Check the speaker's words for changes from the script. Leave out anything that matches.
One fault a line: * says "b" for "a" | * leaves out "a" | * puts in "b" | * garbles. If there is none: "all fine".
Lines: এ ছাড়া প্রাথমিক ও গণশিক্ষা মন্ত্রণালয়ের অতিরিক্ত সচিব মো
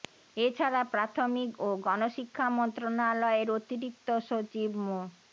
all fine